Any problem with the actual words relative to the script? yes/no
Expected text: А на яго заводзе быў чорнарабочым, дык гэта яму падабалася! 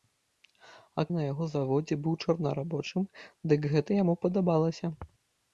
no